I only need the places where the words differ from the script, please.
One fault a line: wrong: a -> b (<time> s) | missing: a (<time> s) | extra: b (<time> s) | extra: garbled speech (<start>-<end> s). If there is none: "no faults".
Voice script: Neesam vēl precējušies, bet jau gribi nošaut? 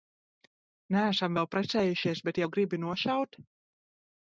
no faults